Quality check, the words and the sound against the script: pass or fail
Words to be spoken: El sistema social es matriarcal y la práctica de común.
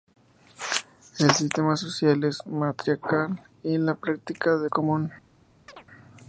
fail